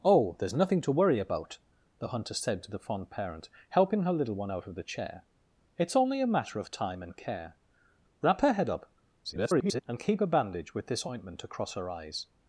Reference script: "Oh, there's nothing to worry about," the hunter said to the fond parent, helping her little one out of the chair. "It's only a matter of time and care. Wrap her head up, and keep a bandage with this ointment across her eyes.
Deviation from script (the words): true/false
true